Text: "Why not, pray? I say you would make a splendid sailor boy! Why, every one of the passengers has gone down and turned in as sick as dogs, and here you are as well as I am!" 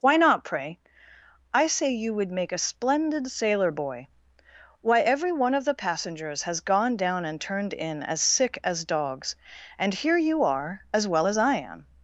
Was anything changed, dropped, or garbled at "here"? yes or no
no